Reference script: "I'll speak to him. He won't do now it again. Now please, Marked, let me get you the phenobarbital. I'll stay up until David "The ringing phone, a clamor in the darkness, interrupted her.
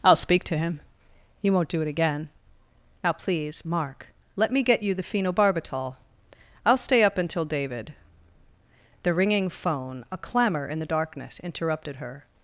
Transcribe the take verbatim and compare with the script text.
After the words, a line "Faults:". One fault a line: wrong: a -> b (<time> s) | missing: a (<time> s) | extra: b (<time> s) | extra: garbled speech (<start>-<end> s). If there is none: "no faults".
"I'll speak to him. He won't do it again. Now please, Mark, let me get you the phenobarbital. I'll stay up until David "The ringing phone, a clamor in the darkness, interrupted her.
Faults:
missing: now (1.8 s)
wrong: Marked -> Mark (3.6 s)